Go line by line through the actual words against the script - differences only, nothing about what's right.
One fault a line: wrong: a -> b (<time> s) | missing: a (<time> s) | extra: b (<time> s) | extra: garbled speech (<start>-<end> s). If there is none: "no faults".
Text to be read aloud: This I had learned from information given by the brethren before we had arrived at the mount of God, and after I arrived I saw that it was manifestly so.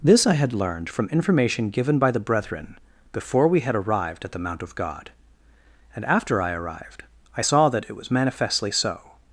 no faults